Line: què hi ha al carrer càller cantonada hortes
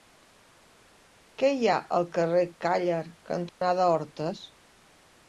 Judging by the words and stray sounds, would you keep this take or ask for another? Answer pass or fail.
fail